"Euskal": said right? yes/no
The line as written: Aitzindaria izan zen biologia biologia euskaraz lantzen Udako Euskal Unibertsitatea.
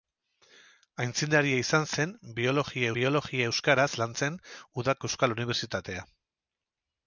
yes